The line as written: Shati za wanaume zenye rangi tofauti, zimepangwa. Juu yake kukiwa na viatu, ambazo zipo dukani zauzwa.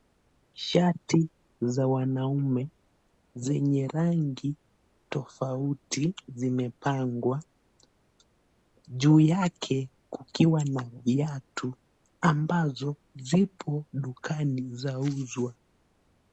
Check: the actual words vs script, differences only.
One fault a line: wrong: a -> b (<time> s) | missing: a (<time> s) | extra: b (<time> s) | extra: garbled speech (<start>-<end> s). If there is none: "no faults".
no faults